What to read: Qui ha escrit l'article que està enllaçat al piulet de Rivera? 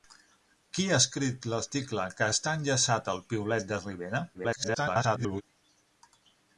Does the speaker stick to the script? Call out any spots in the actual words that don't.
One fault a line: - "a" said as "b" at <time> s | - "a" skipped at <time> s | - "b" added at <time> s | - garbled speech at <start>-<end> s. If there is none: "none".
- garbled speech at 4.3-5.4 s